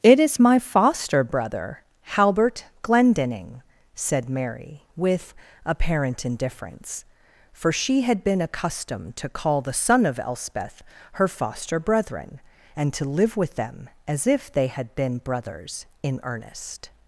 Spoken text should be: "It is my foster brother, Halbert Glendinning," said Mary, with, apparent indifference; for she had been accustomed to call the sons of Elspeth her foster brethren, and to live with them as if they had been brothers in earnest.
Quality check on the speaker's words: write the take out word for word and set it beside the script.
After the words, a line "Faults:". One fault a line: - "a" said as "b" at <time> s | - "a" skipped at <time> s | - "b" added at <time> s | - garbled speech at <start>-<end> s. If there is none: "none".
"It is my foster brother, Halbert Glendinning," said Mary, with, apparent indifference; for she had been accustomed to call the son of Elspeth her foster brethren, and to live with them as if they had been brothers in earnest.
Faults:
- "sons" said as "son" at 9.7 s